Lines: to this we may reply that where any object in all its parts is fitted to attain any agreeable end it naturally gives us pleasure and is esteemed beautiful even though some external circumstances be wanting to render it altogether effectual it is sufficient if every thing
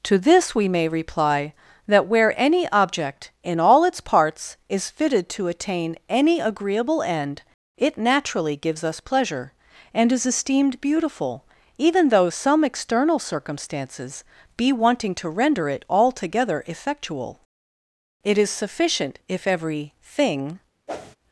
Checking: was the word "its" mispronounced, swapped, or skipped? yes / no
no